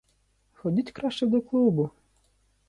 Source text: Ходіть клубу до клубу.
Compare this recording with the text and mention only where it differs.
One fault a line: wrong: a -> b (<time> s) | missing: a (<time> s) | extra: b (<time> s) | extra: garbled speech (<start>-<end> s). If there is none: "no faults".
wrong: клубу -> краще (0.9 s)